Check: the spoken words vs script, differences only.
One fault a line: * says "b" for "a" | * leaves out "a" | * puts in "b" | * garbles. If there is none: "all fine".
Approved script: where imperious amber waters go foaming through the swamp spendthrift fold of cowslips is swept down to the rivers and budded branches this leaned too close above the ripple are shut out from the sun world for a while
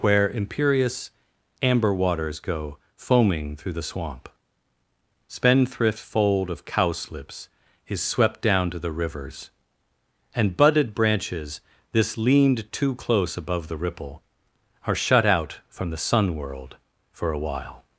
all fine